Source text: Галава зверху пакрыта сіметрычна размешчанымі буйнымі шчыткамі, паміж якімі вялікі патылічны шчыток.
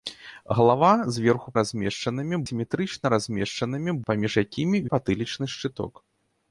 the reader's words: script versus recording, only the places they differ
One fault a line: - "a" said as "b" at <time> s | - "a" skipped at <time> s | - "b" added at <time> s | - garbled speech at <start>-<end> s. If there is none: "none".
- "пакрыта" said as "размешчанымі" at 1.6 s
- "буйнымі шчыткамі" skipped at 3.9 s
- "вялікі" skipped at 4.8 s